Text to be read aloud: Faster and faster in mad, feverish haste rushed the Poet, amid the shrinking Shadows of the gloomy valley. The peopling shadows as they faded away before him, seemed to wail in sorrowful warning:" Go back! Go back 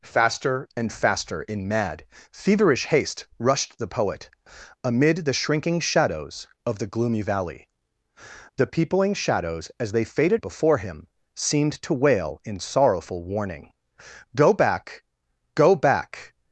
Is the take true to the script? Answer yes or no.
no